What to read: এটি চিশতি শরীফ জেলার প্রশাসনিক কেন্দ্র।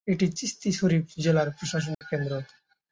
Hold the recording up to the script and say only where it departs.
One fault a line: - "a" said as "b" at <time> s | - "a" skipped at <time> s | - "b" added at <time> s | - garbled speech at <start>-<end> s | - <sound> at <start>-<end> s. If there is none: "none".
- dropout at 1.9-2.0 s